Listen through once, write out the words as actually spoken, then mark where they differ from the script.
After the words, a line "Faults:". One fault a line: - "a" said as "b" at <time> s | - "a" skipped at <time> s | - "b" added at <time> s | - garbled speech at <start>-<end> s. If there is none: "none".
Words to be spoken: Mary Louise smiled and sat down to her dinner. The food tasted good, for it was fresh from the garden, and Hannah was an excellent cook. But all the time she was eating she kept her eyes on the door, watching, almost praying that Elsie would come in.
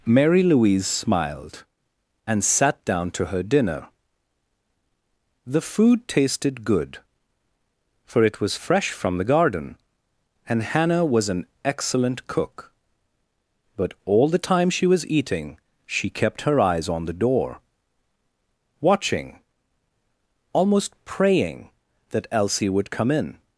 Mary Louise smiled and sat down to her dinner. The food tasted good, for it was fresh from the garden, and Hannah was an excellent cook. But all the time she was eating she kept her eyes on the door, watching, almost praying that Elsie would come in.
Faults:
none